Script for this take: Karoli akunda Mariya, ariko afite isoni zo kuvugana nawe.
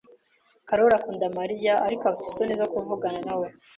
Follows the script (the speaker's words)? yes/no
yes